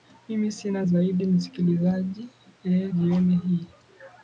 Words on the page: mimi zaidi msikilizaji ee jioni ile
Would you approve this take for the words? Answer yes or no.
no